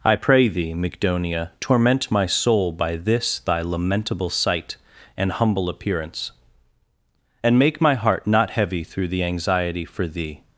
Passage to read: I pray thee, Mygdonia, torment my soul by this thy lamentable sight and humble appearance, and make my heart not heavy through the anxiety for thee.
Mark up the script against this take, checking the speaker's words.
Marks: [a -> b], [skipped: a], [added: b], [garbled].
I pray thee, Mygdonia, torment my soul by this thy lamentable sight and humble appearance, and make my heart not heavy through the anxiety for thee.